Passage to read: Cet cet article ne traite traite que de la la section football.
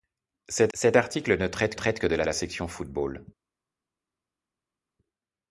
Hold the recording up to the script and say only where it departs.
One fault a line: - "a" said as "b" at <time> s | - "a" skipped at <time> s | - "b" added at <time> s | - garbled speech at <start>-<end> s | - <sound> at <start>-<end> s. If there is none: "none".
none